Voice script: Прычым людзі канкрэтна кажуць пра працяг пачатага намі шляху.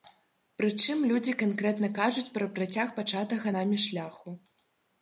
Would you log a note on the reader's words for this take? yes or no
no